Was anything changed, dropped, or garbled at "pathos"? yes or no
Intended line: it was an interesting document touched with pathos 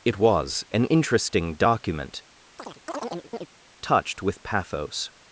no